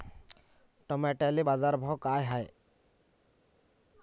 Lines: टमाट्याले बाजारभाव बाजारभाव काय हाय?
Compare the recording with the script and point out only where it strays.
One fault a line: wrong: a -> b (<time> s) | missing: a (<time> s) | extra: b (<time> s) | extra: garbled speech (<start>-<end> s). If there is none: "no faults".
missing: बाजारभाव (2.0 s)